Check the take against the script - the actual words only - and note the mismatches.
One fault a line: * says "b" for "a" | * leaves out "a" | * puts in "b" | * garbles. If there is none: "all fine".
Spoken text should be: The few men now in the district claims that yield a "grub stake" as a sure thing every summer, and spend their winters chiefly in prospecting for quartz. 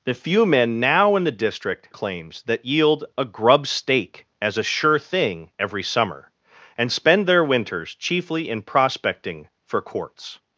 all fine